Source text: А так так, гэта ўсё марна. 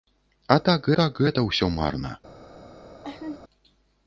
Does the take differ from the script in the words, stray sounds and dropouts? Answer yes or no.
yes